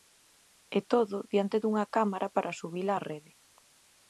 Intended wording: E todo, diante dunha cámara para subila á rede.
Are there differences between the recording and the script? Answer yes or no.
no